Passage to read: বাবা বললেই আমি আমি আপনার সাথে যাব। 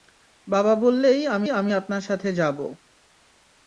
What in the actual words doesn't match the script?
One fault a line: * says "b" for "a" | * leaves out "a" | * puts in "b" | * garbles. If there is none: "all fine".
all fine